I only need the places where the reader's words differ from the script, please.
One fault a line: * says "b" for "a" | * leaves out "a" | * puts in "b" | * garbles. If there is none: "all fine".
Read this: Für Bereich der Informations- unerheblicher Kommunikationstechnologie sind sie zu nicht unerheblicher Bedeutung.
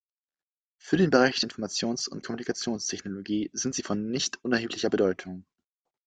* puts in "den"
* says "und" for "unerheblicher"
* says "von" for "zu"